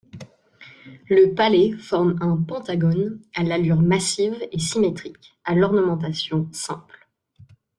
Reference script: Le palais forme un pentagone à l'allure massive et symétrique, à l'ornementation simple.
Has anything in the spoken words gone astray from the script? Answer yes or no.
no